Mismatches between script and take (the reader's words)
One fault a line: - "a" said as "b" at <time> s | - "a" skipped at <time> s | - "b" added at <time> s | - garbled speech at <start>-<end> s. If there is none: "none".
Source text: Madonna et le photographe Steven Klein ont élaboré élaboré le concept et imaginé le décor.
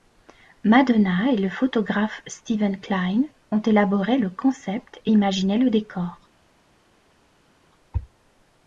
- "élaboré" skipped at 4.2 s